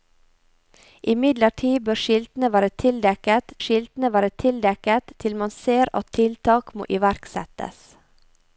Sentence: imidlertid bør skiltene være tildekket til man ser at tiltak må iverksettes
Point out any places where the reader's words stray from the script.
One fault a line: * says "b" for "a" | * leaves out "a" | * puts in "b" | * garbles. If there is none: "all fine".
* puts in "skiltene være tildekket"